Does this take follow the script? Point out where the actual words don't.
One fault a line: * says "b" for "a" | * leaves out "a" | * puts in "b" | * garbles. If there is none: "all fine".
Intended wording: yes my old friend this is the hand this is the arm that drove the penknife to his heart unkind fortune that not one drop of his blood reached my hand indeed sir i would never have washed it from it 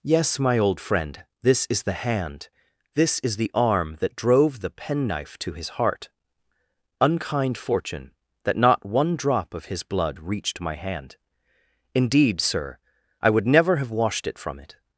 all fine